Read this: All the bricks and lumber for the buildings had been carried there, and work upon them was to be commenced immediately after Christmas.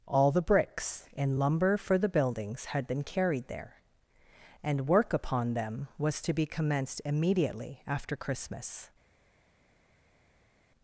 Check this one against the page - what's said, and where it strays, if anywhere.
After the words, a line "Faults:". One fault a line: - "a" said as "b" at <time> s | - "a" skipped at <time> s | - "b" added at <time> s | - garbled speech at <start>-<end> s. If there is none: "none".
All the bricks and lumber for the buildings had been carried there, and work upon them was to be commenced immediately after Christmas.
Faults:
none